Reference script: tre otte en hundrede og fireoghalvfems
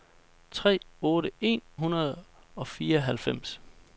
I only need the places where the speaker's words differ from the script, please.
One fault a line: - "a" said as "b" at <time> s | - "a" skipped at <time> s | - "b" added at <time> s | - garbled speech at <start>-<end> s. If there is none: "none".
none